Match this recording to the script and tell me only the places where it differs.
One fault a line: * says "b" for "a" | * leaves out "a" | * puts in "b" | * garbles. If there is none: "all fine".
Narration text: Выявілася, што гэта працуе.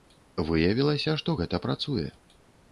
all fine